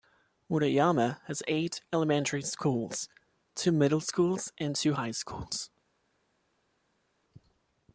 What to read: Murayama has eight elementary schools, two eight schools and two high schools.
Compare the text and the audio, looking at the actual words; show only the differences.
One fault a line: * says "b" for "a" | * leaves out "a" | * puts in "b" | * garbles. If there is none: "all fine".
* says "middle" for "eight"